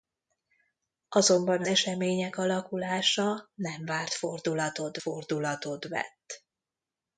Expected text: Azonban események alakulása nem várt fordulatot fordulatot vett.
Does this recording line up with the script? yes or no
yes